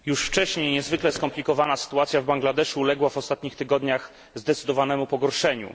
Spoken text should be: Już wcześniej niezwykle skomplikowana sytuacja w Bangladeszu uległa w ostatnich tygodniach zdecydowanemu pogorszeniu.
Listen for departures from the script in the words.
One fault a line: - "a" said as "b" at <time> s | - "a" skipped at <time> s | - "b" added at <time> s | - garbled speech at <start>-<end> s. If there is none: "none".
none